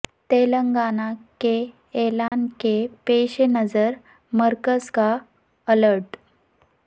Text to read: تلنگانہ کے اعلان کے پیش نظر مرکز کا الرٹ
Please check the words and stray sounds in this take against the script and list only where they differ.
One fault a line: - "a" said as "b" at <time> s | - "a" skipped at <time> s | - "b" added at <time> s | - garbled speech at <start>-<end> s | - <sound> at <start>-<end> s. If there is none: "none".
- dropout at 2.3-2.3 s